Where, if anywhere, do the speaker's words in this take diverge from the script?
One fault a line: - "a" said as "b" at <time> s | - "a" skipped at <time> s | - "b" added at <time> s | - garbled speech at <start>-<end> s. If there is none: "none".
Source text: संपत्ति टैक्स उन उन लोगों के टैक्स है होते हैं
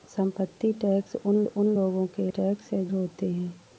none